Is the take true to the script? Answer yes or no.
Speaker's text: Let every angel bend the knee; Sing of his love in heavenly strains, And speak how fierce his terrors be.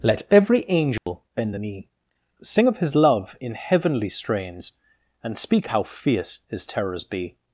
yes